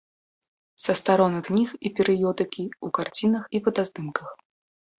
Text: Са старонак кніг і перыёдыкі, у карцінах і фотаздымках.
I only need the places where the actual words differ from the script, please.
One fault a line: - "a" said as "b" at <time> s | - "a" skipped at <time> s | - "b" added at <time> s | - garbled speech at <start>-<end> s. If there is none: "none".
none